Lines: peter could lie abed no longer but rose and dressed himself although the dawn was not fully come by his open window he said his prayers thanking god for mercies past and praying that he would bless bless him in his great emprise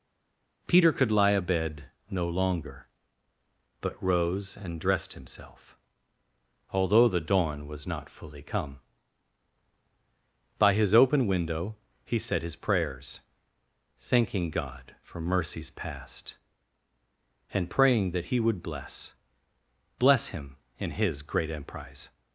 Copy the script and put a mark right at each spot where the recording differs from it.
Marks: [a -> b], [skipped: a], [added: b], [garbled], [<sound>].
peter could lie abed no longer but rose and dressed himself although the dawn was not fully come by his open window he said his prayers thanking god for mercies past and praying that he would bless bless him in his great emprise